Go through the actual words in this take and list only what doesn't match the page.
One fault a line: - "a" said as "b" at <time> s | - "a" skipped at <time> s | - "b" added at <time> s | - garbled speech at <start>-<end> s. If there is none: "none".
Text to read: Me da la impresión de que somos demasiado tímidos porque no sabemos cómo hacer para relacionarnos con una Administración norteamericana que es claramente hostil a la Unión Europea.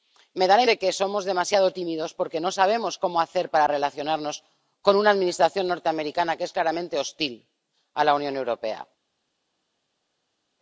- "impresión" skipped at 0.6 s